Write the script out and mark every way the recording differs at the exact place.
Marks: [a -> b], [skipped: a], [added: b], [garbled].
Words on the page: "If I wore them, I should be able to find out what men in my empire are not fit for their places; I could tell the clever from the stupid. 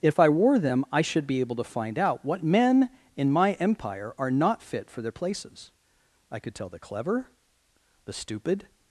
"If I wore them, I should be able to find out what men in my empire are not fit for their places; I could tell the clever [skipped: from] the stupid.